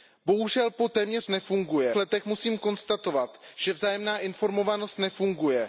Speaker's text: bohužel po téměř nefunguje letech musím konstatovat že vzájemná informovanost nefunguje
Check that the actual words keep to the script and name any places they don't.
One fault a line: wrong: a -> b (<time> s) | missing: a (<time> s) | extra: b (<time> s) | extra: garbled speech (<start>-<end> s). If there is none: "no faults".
no faults